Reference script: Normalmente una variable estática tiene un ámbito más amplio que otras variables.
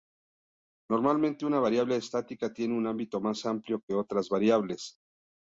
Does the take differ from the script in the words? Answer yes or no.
no